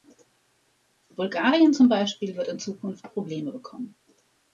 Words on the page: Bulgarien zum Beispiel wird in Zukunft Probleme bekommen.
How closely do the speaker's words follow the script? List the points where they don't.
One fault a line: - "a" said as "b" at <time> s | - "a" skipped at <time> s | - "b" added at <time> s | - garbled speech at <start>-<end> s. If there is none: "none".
none